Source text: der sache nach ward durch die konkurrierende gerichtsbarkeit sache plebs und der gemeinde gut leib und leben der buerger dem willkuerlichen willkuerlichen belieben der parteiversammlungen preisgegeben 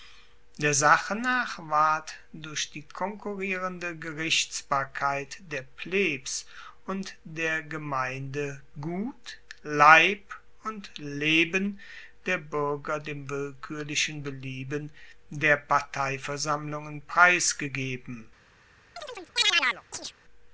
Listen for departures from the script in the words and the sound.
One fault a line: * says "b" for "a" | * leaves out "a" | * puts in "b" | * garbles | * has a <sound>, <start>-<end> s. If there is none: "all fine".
* says "der" for "sache"
* leaves out "willkuerlichen"
* has a chirp, 19.0-20.1 s